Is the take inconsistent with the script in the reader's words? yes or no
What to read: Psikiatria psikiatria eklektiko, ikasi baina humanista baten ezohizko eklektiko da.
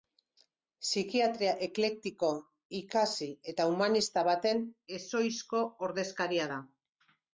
yes